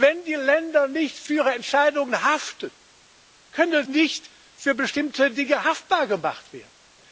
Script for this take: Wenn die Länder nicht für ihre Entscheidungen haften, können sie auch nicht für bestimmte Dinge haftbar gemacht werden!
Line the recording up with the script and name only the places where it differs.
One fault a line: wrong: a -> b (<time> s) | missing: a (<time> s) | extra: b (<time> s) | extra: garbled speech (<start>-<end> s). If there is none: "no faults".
missing: sie auch (3.9 s)